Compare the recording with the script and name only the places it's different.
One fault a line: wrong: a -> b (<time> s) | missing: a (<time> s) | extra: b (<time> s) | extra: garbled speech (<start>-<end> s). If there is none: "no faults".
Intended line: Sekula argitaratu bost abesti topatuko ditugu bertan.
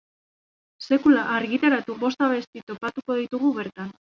no faults